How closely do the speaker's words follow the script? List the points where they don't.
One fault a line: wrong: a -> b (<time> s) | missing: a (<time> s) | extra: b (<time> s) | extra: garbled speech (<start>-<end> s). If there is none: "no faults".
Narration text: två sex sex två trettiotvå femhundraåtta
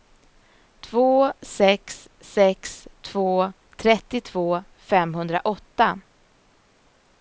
no faults